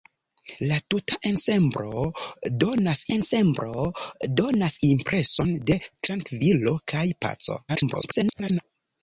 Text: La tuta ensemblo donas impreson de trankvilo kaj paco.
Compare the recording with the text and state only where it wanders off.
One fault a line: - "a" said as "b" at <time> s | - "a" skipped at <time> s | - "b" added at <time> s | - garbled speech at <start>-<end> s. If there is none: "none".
- "ensemblo donas" added at 3.2 s
- garbled speech at 7.7-8.6 s